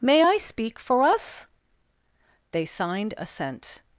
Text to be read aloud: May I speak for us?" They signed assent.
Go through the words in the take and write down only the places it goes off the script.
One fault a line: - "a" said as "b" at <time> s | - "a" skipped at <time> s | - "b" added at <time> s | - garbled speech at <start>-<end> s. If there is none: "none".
none